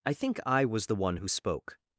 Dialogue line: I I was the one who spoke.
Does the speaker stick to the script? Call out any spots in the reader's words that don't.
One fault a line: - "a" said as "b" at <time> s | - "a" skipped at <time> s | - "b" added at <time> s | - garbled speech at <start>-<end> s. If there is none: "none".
- "think" added at 0.1 s